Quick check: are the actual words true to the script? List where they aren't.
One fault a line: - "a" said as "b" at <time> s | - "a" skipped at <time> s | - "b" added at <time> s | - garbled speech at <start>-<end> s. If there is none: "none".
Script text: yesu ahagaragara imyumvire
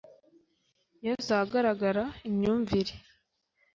none